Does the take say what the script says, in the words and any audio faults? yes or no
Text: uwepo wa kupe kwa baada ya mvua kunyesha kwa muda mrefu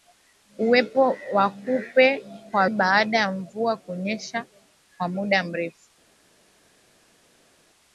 yes